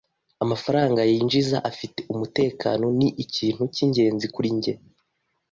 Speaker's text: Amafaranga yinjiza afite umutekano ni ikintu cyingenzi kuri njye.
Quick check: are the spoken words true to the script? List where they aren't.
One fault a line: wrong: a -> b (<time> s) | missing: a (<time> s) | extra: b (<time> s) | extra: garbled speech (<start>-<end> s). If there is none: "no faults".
no faults